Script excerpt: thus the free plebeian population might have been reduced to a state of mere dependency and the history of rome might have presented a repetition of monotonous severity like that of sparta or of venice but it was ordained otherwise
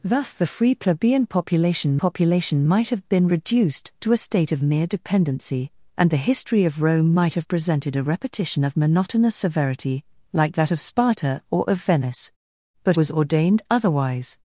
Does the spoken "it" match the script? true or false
false